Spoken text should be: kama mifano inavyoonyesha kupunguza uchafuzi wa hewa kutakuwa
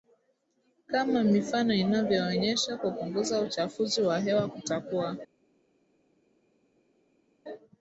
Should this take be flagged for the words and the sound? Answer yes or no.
no